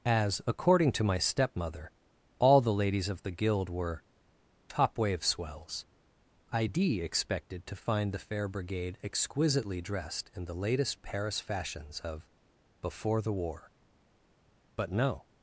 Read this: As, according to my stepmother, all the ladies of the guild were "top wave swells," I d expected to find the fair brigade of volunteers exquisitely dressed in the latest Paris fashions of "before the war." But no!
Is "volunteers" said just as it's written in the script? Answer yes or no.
no